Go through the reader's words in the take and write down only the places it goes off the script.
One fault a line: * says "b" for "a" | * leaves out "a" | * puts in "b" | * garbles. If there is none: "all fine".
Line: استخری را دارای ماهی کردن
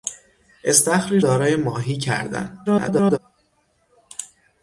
* leaves out "را"
* garbles